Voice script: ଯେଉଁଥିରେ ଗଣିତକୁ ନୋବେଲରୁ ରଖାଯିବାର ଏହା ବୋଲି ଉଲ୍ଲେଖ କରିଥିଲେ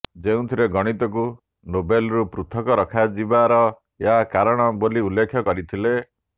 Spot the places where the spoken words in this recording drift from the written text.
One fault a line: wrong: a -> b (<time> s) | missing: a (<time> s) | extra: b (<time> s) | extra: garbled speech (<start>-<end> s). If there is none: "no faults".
extra: ପୃଥକ (2.3 s)
extra: କାରଣ (4.3 s)